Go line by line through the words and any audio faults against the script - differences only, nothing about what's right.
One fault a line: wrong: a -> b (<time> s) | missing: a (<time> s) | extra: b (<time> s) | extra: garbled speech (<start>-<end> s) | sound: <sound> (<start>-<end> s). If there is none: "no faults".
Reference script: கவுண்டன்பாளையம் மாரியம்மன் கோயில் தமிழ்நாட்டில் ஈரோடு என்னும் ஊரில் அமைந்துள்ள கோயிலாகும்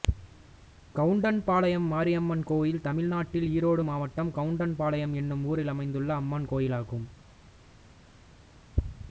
extra: மாவட்டம் கவுண்டன்பாளையம் (3.8 s)
extra: அம்மன் (6.1 s)